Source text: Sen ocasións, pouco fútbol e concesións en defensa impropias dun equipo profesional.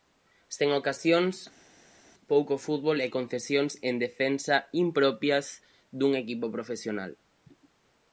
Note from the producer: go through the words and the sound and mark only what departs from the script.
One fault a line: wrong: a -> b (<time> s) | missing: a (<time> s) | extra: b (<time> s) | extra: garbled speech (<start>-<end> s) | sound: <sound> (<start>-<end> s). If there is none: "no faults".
no faults